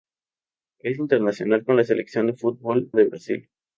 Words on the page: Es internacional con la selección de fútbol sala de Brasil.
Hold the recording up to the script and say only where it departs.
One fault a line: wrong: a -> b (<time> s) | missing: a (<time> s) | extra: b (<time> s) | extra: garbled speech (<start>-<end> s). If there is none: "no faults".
missing: sala (2.9 s)